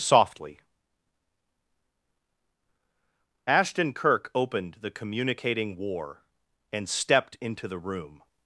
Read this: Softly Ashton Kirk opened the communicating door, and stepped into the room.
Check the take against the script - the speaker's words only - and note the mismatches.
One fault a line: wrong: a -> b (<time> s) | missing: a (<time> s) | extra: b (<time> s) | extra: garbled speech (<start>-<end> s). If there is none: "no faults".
wrong: door -> war (5.8 s)